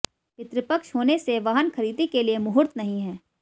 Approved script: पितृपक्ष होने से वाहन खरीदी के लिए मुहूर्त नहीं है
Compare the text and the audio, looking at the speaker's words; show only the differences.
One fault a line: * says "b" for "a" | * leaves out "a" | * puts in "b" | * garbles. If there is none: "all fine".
all fine